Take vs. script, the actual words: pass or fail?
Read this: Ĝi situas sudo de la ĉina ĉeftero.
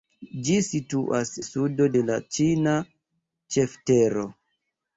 pass